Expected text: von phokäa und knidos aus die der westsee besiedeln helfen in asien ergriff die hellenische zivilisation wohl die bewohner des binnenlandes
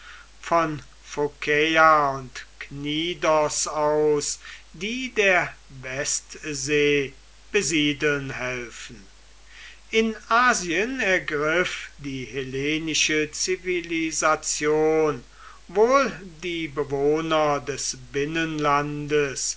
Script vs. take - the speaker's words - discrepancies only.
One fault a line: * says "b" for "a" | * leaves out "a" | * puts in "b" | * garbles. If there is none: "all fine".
all fine